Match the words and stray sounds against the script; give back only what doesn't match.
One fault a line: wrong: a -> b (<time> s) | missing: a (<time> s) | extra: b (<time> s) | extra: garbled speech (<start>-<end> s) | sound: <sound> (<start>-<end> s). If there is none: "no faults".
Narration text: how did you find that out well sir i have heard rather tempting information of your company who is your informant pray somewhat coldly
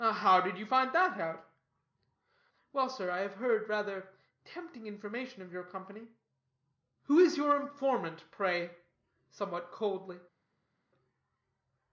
no faults